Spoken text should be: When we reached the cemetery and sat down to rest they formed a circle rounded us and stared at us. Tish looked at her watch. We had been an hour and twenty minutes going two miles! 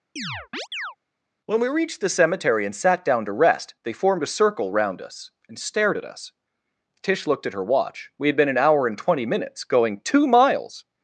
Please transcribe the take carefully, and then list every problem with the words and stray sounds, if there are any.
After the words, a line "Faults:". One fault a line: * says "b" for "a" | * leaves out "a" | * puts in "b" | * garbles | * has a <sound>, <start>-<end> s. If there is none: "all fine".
When we reached the cemetery and sat down to rest they formed a circle round us and stared at us. Tish looked at her watch. We had been an hour and twenty minutes going two miles!
Faults:
* has a chirp, 0.2-1.0 s
* says "round" for "rounded"